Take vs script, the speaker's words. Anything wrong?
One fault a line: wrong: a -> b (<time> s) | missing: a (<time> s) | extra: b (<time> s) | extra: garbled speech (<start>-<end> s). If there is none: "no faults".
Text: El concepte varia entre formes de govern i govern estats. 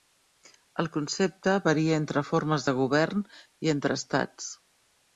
wrong: govern -> entre (3.8 s)